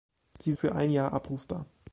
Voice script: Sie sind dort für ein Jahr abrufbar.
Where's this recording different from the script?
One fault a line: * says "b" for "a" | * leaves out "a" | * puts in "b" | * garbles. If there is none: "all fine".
* leaves out "sind dort"